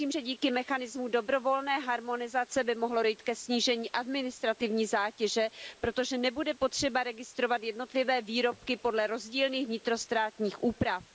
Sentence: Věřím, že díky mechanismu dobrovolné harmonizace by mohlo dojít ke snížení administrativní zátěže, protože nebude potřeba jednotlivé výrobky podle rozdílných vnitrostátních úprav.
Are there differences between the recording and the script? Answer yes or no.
yes